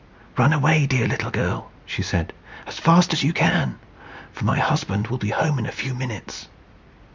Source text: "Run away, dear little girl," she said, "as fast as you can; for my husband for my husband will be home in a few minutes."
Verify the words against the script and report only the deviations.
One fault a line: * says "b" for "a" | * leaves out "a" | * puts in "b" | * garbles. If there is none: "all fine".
* leaves out "for my husband"